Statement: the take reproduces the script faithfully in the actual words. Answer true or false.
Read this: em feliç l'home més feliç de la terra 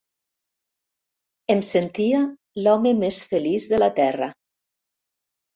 false